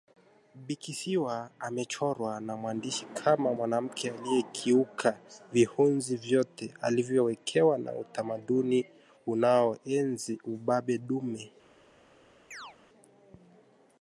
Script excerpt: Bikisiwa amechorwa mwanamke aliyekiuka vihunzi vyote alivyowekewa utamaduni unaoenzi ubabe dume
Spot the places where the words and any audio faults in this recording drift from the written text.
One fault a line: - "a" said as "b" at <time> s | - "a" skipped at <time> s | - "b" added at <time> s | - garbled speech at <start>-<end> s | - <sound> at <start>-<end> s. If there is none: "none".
- "na mwandishi kama" added at 2.4 s
- "na" added at 7.8 s
- chirp at 12.5-12.8 s